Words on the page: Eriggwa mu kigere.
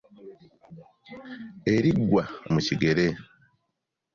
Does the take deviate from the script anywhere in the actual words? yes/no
no